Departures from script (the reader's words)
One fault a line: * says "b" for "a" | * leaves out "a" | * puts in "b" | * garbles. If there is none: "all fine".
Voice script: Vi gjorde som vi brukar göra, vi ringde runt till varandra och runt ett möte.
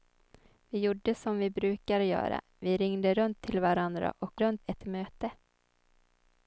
all fine